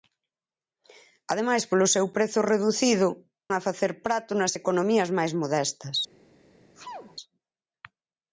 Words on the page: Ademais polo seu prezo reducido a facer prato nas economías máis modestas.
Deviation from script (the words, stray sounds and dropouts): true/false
true